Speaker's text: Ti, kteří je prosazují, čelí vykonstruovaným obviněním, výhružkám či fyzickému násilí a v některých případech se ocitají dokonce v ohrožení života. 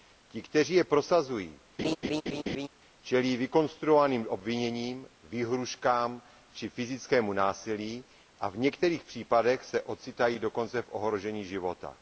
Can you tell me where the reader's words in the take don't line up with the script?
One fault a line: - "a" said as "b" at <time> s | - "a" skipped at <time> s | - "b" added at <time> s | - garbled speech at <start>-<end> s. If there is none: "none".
none